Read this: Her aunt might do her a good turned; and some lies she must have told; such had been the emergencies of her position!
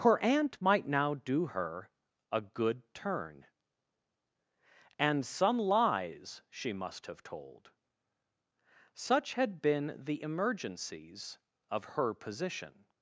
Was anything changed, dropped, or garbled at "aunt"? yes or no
no